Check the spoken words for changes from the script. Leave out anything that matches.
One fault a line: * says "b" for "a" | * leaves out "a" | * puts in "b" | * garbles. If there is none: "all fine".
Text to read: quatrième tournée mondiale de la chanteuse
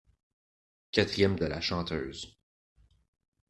* leaves out "tournée mondiale"